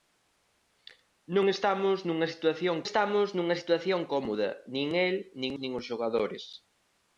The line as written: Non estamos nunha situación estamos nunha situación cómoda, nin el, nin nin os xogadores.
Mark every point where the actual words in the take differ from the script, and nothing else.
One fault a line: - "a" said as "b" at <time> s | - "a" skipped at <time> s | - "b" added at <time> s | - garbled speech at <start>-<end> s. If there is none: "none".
none